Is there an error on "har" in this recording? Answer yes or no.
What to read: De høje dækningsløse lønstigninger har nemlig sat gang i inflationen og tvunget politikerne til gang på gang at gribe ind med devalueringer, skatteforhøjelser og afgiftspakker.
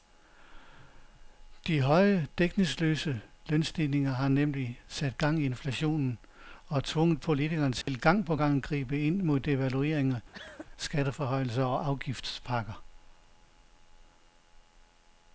no